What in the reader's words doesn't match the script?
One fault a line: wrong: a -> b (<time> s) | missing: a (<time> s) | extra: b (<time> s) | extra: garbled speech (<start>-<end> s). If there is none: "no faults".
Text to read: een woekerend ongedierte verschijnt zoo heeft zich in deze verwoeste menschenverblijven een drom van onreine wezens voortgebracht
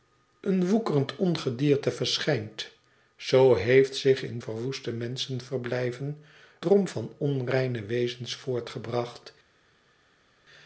missing: deze (4.4 s)
missing: een (6.2 s)